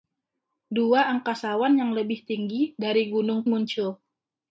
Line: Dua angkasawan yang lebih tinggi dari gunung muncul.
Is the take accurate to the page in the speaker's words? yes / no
yes